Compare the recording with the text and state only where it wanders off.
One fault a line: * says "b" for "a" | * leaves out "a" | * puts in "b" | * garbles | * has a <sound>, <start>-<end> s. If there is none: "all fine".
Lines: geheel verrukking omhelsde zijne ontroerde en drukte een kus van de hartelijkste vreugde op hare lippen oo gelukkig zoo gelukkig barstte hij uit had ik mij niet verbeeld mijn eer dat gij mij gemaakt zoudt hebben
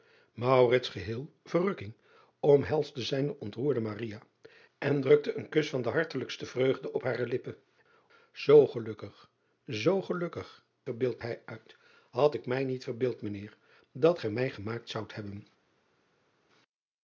* says "verbeeld" for "barstte"